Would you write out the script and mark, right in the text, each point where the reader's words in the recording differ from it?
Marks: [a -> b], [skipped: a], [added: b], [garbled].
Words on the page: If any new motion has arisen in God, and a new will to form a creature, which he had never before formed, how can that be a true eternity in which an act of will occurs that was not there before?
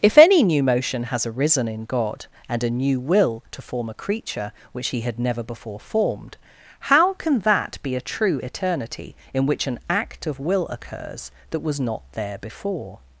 If any new motion has arisen in God, and a new will to form a creature, which he had never before formed, how can that be a true eternity in which an act of will occurs that was not there before?